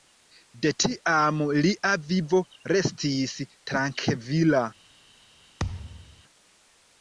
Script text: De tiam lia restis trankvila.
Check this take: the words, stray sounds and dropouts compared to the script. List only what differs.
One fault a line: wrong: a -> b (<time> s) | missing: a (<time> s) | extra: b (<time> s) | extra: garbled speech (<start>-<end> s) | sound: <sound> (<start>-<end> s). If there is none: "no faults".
extra: vivo (2.1 s)
sound: thud (5.6-6.2 s)